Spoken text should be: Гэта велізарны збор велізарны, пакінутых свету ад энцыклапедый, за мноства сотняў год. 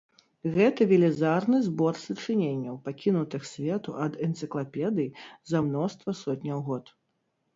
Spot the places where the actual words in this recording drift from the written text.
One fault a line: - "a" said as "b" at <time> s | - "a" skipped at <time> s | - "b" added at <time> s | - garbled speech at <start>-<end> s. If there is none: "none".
- "велізарны" said as "сачыненняў" at 2.0 s